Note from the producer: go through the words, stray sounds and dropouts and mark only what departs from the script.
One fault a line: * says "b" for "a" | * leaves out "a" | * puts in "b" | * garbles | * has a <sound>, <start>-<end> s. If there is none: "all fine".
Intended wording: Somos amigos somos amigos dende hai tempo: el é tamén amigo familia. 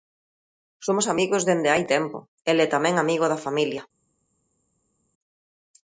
* leaves out "somos amigos"
* puts in "da"